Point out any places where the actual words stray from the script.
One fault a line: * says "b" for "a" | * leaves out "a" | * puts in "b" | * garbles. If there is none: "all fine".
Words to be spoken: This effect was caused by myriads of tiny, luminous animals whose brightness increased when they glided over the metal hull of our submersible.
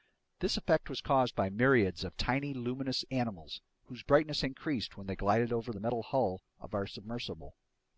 all fine